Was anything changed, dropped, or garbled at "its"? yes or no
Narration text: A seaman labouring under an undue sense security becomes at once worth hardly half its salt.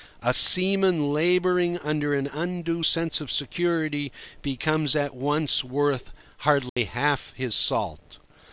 yes